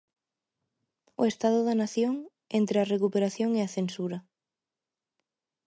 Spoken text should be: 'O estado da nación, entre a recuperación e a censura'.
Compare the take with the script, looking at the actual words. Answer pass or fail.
pass